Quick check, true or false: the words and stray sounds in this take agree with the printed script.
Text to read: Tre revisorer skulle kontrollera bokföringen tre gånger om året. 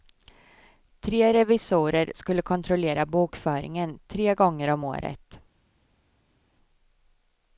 true